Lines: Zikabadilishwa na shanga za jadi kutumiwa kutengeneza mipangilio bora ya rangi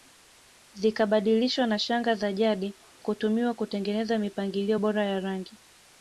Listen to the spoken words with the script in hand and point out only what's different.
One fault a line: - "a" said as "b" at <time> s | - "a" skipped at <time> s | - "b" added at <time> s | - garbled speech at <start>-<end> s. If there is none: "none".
none